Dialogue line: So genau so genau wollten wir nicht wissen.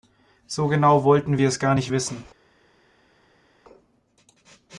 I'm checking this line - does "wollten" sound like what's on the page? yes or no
no